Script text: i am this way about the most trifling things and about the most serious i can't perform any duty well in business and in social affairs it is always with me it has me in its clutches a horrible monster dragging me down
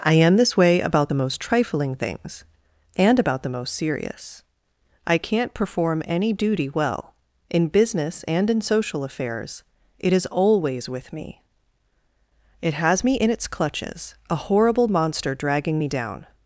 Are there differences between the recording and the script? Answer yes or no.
no